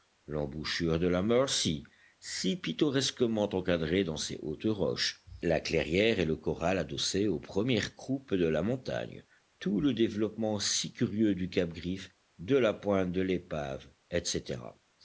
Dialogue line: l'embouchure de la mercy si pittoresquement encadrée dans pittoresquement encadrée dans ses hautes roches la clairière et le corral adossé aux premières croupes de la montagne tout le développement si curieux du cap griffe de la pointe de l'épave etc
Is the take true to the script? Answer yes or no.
no